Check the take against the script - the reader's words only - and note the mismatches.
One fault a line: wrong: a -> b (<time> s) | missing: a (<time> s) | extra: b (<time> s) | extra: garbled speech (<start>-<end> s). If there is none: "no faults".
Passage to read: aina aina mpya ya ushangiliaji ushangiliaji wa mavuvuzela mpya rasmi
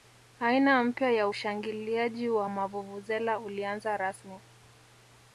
missing: aina (0.8 s)
missing: ushangiliaji (2.3 s)
wrong: mpya -> ulianza (3.4 s)